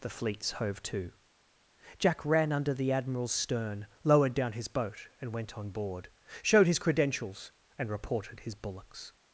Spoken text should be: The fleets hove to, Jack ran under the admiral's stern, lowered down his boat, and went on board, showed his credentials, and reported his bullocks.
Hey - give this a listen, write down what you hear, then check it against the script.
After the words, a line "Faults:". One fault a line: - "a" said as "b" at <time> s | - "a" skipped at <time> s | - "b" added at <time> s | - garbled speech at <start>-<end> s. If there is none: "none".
The fleets hove to, Jack ran under the admiral's stern, lowered down his boat, and went on board, showed his credentials, and reported his bullocks.
Faults:
none